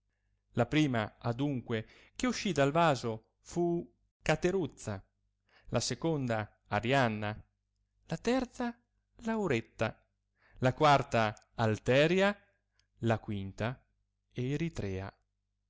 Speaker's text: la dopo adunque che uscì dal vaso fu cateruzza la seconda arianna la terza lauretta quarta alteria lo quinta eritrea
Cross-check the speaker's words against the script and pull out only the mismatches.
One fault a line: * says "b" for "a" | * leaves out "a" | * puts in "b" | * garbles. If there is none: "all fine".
* says "prima" for "dopo"
* puts in "la"
* says "la" for "lo"